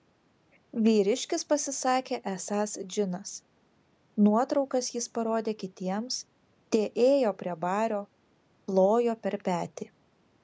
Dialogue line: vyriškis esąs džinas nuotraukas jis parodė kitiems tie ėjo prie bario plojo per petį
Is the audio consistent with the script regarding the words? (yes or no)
no